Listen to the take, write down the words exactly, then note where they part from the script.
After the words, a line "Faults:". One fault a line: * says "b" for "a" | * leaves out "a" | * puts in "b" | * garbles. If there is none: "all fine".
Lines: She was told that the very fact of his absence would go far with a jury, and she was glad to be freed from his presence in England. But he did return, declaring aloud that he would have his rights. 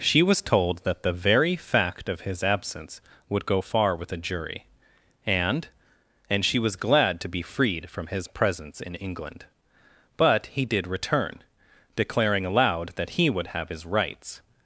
She was told that the very fact of his absence would go far with a jury, and and she was glad to be freed from his presence in England. But he did return, declaring aloud that he would have his rights.
Faults:
* puts in "and"